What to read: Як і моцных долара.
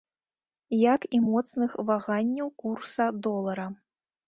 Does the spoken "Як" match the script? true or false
true